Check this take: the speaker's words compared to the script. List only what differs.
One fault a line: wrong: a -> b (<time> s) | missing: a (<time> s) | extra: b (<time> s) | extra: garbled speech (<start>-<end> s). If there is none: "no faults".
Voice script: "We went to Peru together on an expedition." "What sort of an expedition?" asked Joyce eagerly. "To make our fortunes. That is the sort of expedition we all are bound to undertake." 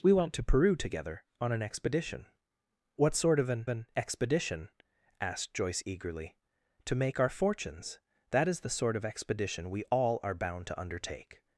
extra: an (3.7 s)